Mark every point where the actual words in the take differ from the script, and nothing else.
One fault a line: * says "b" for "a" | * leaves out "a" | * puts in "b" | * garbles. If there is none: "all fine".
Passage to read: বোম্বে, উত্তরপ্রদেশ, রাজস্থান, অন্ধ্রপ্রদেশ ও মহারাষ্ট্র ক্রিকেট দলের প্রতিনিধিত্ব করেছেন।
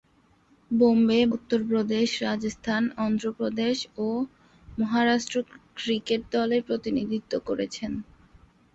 all fine